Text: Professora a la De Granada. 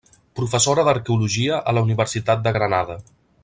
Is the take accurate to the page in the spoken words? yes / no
no